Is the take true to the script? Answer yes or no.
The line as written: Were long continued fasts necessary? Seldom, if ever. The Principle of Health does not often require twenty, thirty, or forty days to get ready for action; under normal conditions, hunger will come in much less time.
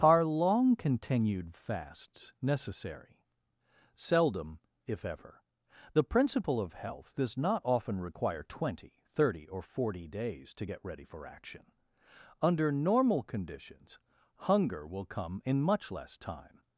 no